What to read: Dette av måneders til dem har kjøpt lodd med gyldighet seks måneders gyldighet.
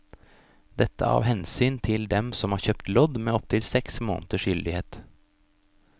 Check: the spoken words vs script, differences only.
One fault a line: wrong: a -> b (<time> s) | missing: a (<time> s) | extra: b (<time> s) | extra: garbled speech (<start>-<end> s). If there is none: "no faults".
wrong: måneders -> hensyn (1.3 s)
extra: som (2.4 s)
wrong: gyldighet -> opptil (3.4 s)